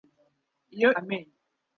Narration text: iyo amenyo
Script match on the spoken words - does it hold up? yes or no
yes